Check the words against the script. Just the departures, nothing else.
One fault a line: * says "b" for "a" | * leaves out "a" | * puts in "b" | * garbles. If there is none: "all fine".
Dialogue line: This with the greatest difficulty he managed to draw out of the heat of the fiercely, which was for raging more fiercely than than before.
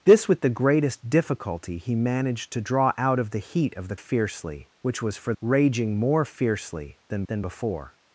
all fine